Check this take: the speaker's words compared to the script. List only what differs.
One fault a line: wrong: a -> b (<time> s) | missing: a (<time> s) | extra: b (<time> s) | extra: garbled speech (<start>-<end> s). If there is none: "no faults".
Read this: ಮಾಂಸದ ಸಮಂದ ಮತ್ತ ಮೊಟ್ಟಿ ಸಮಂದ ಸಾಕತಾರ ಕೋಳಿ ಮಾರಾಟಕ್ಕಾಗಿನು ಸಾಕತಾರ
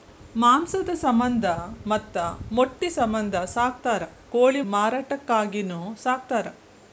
no faults